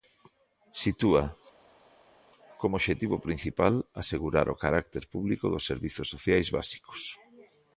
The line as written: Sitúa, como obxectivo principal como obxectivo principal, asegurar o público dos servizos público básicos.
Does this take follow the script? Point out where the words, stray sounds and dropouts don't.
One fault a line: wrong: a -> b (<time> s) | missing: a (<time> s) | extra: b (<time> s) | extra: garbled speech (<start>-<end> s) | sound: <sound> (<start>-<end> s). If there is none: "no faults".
missing: como obxectivo principal (3.7 s)
extra: carácter (4.6 s)
wrong: público -> sociais (6.1 s)